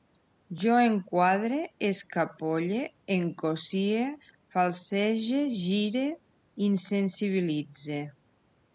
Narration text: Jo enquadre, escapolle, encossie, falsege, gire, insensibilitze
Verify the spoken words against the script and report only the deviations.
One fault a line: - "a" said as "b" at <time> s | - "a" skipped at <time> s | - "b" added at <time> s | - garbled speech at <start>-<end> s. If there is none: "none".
none